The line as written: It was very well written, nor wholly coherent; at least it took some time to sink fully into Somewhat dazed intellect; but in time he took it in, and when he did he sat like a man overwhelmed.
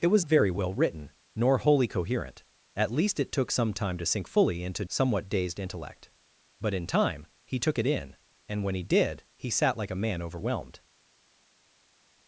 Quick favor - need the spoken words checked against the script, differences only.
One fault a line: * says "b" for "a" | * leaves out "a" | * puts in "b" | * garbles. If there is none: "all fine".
all fine